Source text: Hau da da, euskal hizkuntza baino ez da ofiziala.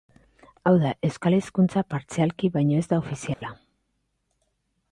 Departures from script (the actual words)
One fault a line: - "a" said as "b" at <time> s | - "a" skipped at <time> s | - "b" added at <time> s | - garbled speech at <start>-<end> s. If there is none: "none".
- "da" skipped at 0.9 s
- "partzialki" added at 1.9 s